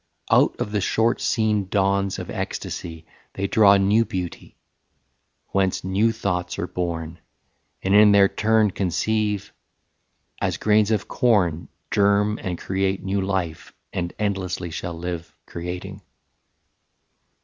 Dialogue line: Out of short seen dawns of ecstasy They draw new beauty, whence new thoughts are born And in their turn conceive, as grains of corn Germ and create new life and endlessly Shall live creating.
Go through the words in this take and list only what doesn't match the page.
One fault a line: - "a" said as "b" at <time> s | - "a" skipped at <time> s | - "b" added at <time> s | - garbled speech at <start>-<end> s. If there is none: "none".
- "the" added at 0.7 s